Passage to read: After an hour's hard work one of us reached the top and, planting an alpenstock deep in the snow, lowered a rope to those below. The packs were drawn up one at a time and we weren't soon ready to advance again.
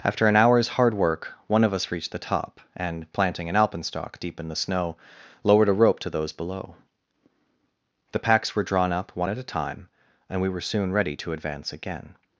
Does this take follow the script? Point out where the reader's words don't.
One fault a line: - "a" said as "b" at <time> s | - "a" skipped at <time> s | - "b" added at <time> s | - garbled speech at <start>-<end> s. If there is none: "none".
- "weren't" said as "were" at 10.5 s